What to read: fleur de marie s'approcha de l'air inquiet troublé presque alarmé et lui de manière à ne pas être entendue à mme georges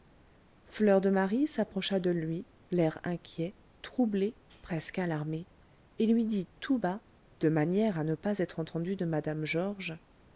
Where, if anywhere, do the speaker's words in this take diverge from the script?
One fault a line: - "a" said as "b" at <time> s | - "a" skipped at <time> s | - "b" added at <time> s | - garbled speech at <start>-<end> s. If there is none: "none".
- "lui" added at 2.1 s
- "dit tout bas" added at 6.2 s
- "à" said as "de" at 8.9 s